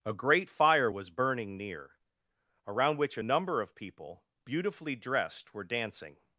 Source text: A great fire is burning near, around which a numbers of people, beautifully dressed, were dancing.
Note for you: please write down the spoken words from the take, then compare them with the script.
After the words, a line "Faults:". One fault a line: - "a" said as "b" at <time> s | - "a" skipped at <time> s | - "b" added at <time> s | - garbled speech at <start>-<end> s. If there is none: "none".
A great fire was burning near, around which a number of people, beautifully dressed, were dancing.
Faults:
- "is" said as "was" at 0.9 s
- "numbers" said as "number" at 3.2 s